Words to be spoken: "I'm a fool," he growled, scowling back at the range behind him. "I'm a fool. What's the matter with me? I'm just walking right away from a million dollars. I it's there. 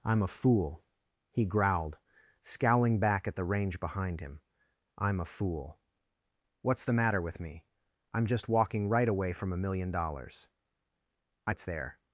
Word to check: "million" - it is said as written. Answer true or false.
true